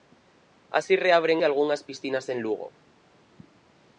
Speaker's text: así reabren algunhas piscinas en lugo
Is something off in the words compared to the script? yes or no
no